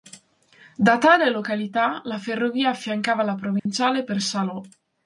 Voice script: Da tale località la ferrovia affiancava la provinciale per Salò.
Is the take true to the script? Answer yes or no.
yes